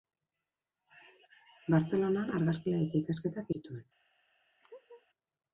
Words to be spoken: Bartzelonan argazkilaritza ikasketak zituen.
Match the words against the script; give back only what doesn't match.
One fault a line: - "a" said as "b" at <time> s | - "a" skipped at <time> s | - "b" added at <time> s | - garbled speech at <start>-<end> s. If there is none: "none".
none